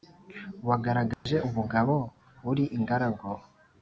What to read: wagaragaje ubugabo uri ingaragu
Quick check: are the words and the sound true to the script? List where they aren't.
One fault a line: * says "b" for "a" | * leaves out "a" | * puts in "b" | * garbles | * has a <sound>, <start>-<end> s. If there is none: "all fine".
* has a dropout, 1.1-1.3 s